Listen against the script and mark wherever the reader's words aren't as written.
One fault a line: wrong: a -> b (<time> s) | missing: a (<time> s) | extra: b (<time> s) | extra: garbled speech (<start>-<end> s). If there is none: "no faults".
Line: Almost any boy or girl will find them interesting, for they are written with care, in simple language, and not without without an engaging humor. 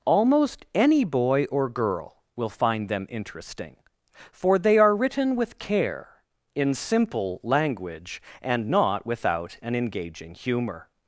missing: without (9.6 s)